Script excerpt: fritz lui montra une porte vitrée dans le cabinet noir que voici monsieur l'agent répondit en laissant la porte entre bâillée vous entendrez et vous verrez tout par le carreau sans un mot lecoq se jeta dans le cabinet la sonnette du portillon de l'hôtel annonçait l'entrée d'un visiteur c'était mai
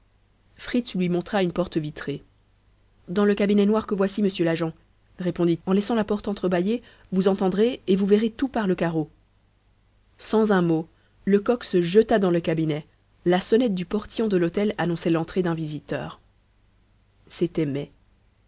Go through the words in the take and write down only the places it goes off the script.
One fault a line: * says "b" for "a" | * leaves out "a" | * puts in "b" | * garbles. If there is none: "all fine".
all fine